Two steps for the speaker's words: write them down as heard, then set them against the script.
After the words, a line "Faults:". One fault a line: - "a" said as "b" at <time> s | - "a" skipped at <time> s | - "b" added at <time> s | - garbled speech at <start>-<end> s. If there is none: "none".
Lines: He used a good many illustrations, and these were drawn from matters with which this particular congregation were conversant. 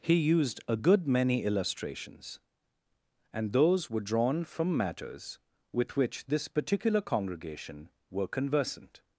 He used a good many illustrations, and those were drawn from matters with which this particular congregation were conversant.
Faults:
- "these" said as "those" at 3.5 s